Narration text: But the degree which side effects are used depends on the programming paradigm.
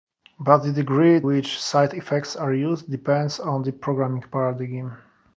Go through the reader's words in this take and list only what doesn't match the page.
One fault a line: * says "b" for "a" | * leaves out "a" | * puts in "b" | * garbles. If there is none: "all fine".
all fine